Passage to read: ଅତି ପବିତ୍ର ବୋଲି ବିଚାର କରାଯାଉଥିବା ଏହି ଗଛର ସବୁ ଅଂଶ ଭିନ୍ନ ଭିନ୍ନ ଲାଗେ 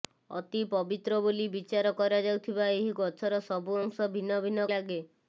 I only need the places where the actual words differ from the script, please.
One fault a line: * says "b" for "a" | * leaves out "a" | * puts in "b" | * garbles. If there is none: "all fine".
all fine